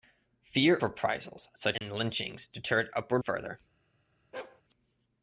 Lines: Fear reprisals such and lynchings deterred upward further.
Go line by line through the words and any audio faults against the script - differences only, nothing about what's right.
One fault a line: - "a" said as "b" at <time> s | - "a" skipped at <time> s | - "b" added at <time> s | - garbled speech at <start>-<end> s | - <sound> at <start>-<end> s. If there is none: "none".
- dropout at 1.8-1.8 s
- bark at 4.3-4.6 s